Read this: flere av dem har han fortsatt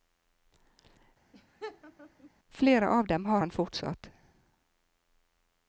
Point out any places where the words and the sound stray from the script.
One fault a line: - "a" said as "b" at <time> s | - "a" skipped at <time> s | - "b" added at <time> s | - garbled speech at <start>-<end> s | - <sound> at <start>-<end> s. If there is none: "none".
- laugh at 1.3-2.3 s